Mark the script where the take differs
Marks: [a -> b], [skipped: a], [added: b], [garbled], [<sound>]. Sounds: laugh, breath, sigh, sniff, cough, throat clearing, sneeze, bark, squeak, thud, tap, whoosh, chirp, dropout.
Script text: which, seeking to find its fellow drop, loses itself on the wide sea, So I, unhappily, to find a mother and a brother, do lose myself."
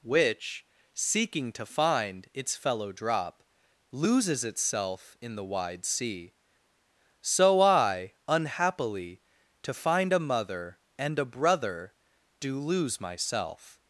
which, seeking to find its fellow drop, loses itself [on -> in] the wide sea, So I, unhappily, to find a mother and a brother, do lose myself."